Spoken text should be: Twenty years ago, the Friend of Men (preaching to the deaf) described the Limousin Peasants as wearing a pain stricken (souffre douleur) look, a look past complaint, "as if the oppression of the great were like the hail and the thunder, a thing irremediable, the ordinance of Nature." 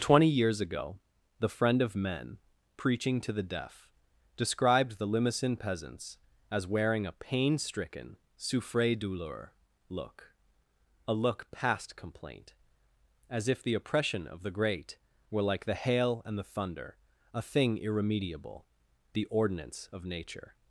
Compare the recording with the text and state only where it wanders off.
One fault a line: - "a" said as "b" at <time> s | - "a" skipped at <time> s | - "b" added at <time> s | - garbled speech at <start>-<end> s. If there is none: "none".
none